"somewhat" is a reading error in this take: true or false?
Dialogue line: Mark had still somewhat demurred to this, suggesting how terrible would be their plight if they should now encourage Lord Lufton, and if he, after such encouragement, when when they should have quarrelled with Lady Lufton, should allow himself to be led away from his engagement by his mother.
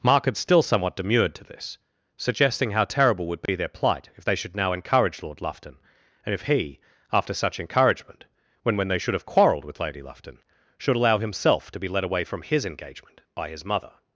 false